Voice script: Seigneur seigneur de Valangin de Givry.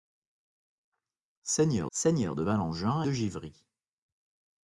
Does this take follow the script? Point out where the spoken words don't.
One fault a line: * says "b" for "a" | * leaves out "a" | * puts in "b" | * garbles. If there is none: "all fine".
all fine